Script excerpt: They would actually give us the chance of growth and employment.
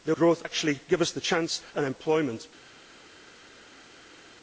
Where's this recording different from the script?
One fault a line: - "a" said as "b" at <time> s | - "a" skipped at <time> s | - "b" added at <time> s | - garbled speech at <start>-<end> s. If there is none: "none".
- "would" said as "growth" at 0.1 s
- "of growth" skipped at 1.6 s